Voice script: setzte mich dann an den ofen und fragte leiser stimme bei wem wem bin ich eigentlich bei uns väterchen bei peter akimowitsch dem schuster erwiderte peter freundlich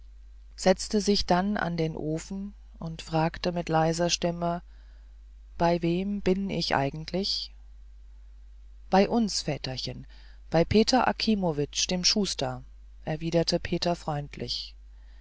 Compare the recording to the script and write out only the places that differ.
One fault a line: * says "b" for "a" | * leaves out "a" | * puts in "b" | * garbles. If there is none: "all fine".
* says "sich" for "mich"
* puts in "mit"
* leaves out "wem"